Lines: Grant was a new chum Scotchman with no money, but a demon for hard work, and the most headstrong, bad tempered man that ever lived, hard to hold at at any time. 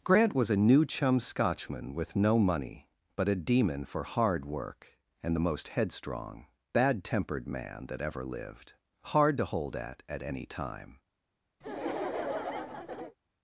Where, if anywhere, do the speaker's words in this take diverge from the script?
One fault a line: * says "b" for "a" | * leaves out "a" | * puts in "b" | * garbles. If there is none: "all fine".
all fine